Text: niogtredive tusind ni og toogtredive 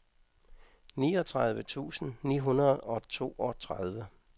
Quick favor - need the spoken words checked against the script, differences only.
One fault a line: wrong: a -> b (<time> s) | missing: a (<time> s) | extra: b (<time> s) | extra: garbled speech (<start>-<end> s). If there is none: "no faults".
extra: hundrede (2.4 s)